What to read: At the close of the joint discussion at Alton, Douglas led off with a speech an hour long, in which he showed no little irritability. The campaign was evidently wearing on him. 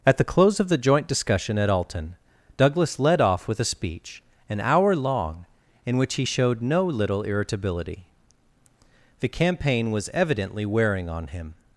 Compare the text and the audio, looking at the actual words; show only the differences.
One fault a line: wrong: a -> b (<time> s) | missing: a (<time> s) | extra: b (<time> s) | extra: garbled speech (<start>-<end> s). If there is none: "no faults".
no faults